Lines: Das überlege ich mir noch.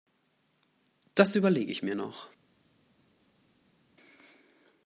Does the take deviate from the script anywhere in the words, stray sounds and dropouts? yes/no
no